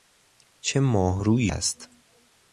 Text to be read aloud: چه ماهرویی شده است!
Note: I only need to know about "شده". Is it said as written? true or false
false